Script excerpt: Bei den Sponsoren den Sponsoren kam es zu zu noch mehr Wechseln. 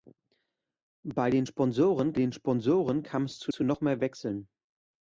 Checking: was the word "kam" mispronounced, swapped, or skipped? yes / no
no